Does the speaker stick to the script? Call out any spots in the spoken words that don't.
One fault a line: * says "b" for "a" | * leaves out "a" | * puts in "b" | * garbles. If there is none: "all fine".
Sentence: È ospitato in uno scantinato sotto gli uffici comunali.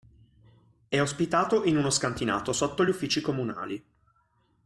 all fine